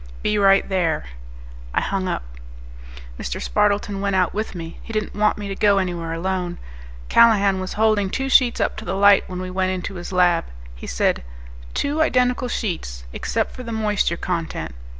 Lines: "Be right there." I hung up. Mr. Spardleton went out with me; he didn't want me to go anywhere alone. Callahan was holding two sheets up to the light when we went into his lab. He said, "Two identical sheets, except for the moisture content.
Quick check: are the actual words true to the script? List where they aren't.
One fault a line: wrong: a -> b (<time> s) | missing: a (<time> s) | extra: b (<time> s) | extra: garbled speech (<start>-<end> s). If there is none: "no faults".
no faults